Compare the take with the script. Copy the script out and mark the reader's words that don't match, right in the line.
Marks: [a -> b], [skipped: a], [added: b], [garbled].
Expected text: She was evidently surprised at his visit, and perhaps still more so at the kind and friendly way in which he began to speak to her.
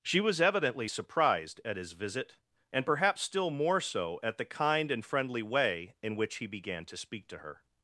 She was evidently surprised at his visit, and perhaps still more so at the kind and friendly way in which he began to speak to her.